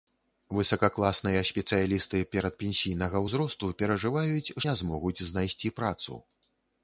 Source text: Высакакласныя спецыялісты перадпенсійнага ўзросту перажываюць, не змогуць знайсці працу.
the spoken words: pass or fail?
pass